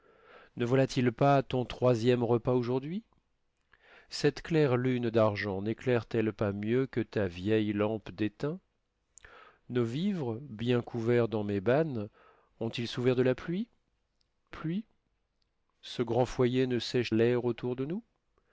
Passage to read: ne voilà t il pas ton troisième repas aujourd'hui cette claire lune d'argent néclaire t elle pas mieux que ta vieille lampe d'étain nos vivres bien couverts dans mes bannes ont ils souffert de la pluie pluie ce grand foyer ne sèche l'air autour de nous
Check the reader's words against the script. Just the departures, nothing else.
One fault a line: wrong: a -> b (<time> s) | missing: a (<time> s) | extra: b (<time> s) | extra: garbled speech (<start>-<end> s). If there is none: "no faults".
no faults